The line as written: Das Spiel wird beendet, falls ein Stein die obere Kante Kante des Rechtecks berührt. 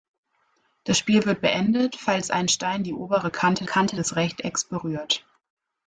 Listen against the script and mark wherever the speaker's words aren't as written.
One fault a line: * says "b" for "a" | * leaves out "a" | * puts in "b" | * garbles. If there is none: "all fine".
all fine